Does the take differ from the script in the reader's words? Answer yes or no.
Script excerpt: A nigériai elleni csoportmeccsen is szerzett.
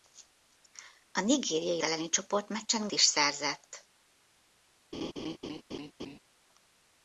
no